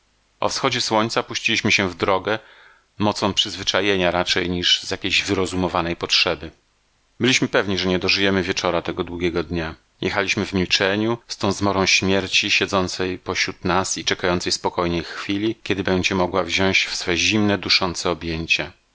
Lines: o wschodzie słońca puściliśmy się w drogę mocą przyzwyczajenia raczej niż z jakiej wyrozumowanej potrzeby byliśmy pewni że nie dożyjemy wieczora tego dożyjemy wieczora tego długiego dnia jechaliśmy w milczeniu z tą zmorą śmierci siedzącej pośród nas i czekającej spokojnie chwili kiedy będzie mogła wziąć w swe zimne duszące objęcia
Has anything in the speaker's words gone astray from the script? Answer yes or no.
yes